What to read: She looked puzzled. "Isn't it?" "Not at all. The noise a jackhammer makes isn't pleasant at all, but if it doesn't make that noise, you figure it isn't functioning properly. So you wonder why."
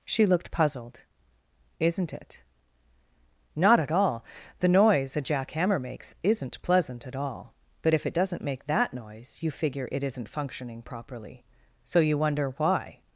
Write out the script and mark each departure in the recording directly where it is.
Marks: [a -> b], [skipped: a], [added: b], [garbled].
She looked puzzled. "Isn't it?" "Not at all. The noise a jackhammer makes isn't pleasant at all, but if it doesn't make that noise, you figure it isn't functioning properly. So you wonder why."